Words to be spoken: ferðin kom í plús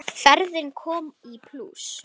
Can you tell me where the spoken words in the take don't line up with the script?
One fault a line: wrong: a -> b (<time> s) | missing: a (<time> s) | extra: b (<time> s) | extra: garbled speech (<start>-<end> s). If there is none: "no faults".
no faults